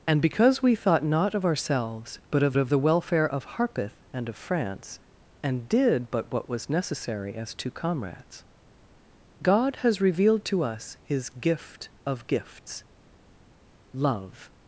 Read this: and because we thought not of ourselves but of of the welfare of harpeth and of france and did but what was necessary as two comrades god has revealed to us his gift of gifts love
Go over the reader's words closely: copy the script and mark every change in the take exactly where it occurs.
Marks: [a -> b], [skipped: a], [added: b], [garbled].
and because we thought not of ourselves but of of the welfare of harpeth and of france and did but what was necessary as two comrades god has revealed to us his gift of gifts love